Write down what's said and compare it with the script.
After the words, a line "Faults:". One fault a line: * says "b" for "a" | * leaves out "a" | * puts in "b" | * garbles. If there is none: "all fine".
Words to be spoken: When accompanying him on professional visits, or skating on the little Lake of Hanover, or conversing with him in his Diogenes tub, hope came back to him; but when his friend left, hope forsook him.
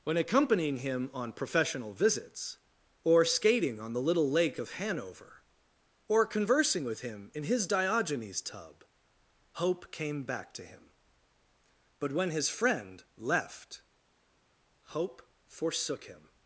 When accompanying him on professional visits, or skating on the little Lake of Hanover, or conversing with him in his Diogenes tub, hope came back to him; but when his friend left, hope forsook him.
Faults:
all fine